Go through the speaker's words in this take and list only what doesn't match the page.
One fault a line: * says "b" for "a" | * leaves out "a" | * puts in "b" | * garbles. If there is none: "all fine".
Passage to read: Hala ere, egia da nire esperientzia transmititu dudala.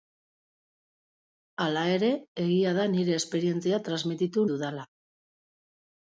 all fine